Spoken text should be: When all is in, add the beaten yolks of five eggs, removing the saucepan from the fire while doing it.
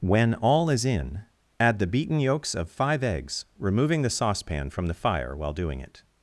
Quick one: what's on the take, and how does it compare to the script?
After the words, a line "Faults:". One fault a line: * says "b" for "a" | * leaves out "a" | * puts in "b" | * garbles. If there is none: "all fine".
When all is in, add the beaten yolks of five eggs, removing the saucepan from the fire while doing it.
Faults:
all fine